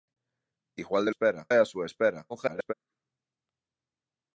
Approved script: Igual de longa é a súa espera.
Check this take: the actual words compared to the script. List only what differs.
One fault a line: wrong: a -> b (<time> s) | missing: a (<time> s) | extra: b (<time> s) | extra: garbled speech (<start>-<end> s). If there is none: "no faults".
wrong: longa -> espera (1.1 s)
extra: garbled speech (2.3-2.7 s)